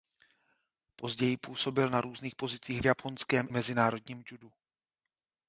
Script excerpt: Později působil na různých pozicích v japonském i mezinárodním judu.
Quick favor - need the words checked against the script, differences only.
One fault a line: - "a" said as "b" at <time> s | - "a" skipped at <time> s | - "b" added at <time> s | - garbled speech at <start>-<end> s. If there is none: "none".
- "i" skipped at 3.5 s